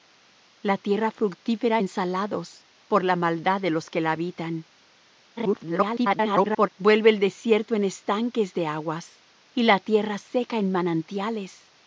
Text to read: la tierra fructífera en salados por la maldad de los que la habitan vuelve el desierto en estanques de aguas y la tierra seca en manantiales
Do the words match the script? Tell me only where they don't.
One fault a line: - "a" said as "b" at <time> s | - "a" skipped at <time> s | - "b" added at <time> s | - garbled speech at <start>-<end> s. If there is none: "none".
- garbled speech at 5.4-6.7 s